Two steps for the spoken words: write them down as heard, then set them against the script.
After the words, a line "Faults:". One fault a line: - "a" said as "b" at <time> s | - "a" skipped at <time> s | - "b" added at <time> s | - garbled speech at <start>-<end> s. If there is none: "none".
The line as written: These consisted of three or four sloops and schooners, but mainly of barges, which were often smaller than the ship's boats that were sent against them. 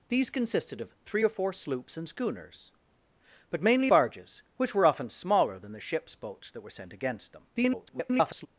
These consisted of three or four sloops and schooners, but mainly barges, which were often smaller than the ship's boats that were sent against them. [garbled]
Faults:
- "of" skipped at 3.9 s
- garbled speech at 7.5-8.5 s